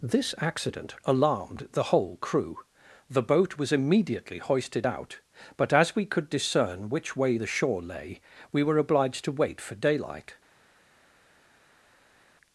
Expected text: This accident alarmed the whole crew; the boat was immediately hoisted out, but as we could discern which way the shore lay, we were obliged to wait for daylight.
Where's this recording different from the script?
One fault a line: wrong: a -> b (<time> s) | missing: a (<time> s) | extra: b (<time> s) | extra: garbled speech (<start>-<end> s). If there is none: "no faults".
no faults